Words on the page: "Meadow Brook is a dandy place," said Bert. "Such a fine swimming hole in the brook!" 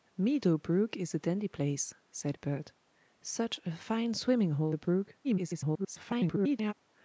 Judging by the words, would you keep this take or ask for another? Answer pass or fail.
fail